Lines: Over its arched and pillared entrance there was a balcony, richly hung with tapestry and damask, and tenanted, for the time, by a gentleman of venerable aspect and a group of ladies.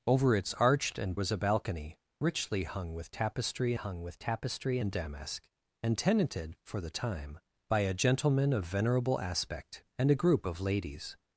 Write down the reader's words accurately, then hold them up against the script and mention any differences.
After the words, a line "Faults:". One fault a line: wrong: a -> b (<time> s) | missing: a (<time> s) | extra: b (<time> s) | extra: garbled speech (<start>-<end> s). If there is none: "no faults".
Over its arched and was a balcony, richly hung with tapestry hung with tapestry and damask, and tenanted, for the time, by a gentleman of venerable aspect and a group of ladies.
Faults:
missing: pillared entrance there (1.2 s)
extra: hung with tapestry (3.7 s)